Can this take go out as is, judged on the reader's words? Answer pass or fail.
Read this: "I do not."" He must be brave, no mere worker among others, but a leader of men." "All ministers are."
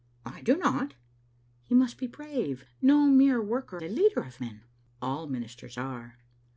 fail